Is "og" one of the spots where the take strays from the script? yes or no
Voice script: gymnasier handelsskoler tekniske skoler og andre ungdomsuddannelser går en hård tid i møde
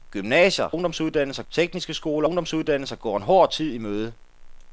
yes